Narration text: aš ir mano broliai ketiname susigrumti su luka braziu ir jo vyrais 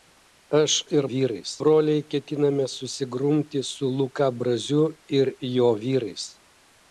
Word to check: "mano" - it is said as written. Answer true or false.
false